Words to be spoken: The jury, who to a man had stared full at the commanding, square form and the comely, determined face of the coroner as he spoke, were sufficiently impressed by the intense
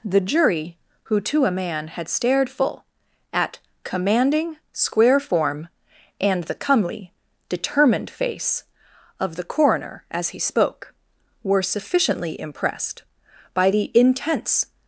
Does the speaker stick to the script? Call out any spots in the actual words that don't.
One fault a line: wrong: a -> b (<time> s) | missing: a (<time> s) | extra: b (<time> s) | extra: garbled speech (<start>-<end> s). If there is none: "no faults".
missing: the (3.6 s)